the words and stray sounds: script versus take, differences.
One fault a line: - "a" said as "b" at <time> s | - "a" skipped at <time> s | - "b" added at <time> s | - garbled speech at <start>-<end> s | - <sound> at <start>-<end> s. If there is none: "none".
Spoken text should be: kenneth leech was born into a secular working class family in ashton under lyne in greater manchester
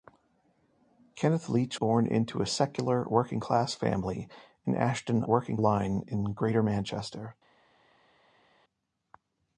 - "was" skipped at 1.8 s
- "under" said as "working" at 5.2 s